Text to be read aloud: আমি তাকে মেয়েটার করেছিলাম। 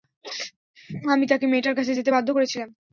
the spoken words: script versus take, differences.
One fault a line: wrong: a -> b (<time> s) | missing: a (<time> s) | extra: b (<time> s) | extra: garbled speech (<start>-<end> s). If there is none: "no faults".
extra: কাছে যেতে বাধ্য (1.8 s)